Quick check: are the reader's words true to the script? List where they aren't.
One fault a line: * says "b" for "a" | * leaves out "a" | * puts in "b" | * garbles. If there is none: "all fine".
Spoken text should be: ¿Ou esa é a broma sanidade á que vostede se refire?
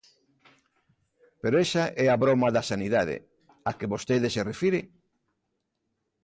* says "Pero" for "Ou"
* puts in "da"